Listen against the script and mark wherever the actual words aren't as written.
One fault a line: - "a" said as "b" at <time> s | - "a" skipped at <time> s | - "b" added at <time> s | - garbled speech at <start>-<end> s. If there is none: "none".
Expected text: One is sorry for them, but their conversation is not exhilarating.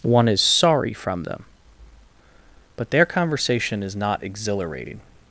- "for" said as "from" at 0.9 s